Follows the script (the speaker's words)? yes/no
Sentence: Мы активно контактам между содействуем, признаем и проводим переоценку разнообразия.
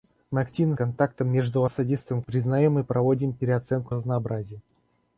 yes